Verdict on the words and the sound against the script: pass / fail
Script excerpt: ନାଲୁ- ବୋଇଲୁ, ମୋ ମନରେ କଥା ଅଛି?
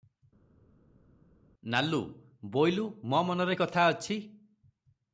pass